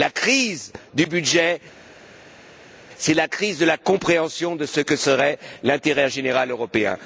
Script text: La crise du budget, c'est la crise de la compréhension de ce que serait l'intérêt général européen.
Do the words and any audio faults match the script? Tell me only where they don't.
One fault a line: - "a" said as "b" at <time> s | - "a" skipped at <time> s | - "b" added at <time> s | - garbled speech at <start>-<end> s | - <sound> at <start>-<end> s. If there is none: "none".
none